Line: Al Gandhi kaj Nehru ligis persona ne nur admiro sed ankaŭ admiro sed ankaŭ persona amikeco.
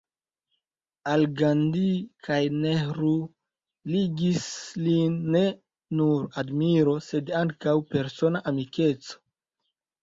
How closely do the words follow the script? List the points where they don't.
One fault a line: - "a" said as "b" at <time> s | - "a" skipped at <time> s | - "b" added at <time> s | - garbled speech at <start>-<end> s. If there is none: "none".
- "persona" said as "lin" at 4.9 s
- "admiro sed ankaŭ" skipped at 7.8 s